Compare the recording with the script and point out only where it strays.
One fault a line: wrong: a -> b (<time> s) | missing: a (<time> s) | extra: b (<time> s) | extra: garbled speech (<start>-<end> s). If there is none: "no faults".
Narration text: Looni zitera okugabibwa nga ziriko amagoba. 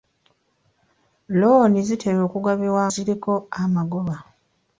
missing: nga (2.8 s)